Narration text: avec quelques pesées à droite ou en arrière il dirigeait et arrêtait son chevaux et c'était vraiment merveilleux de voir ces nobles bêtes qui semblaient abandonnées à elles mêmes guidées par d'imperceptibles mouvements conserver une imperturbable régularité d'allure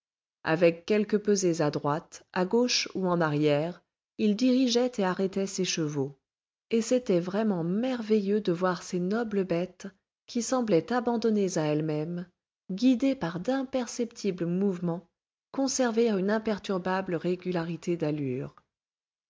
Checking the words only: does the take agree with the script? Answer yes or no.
no